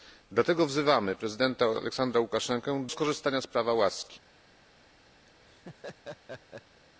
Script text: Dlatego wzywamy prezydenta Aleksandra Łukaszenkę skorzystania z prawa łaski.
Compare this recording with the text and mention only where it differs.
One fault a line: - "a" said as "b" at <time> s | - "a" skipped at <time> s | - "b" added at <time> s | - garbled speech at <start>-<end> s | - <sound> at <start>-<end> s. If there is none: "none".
- laugh at 5.3-6.8 s